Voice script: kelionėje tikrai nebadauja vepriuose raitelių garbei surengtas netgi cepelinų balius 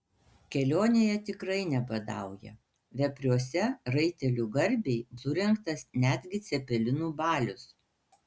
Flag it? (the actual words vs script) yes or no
no